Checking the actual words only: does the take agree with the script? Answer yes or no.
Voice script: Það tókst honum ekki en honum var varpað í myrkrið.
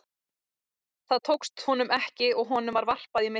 no